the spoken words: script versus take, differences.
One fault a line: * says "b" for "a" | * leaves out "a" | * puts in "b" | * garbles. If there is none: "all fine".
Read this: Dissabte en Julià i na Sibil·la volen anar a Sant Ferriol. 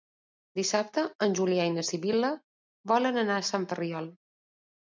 all fine